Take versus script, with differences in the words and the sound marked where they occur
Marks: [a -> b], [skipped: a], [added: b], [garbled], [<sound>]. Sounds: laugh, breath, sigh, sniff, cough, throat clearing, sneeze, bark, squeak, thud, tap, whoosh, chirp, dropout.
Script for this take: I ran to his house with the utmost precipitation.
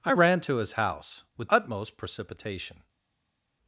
I ran to his house with [skipped: the] utmost precipitation.